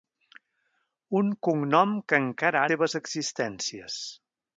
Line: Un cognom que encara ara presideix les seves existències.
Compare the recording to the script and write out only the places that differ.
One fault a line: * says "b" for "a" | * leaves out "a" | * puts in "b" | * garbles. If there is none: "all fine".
* leaves out "ara presideix les"